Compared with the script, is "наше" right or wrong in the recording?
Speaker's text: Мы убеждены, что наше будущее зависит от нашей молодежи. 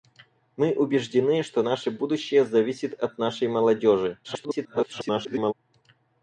right